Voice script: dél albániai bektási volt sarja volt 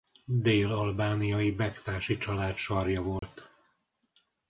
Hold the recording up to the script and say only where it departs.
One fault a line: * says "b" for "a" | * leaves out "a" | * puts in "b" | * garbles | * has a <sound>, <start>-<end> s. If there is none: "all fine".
* says "család" for "volt"
* has a dropout, 3.2-3.2 s